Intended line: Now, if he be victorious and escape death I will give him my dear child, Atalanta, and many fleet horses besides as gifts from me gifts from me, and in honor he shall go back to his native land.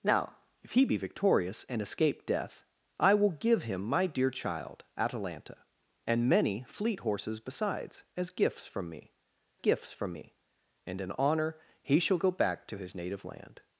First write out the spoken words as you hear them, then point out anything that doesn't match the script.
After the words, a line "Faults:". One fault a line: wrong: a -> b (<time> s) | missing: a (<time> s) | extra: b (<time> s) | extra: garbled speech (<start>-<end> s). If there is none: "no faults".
Now, if he be victorious and escape death I will give him my dear child, Atalanta, and many fleet horses besides as gifts from me gifts from me, and in honor he shall go back to his native land.
Faults:
no faults